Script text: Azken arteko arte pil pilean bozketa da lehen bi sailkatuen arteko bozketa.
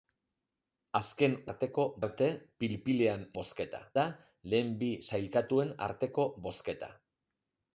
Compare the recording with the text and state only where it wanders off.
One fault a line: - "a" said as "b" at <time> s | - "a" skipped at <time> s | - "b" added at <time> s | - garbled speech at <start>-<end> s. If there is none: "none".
none